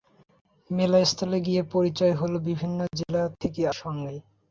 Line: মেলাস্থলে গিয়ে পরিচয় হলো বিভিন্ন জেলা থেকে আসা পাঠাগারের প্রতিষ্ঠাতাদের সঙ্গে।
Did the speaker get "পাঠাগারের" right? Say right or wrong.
wrong